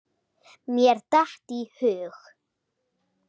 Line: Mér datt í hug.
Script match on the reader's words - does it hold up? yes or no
yes